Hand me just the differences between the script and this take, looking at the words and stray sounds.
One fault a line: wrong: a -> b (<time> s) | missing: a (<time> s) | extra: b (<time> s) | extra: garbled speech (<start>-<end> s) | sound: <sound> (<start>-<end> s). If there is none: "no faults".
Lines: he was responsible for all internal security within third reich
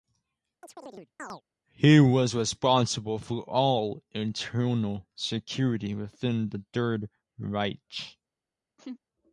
sound: chirp (0.6-1.4 s)
extra: the (6.5 s)
sound: laugh (8.8-9.0 s)